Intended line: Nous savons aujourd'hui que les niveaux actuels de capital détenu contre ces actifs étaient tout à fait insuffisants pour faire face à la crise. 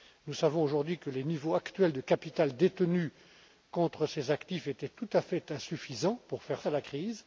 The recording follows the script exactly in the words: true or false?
false